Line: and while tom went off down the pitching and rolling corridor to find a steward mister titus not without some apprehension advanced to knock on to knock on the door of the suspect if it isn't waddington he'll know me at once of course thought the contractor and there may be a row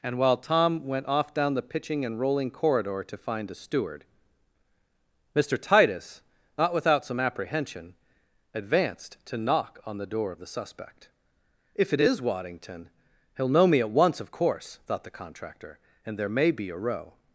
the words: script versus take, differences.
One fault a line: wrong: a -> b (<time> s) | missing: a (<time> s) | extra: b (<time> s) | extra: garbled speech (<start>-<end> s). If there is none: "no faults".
missing: to knock on (10.0 s)
wrong: isn't -> is (12.0 s)